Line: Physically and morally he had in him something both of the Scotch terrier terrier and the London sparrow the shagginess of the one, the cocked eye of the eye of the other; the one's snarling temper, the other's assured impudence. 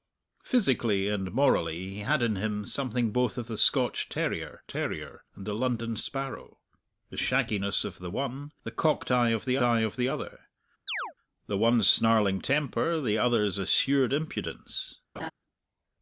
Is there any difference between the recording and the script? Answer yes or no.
no